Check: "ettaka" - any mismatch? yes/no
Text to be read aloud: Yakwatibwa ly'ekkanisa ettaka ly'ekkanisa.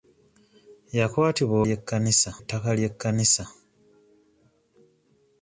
no